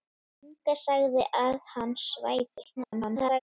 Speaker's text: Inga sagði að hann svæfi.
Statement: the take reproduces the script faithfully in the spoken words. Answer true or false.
false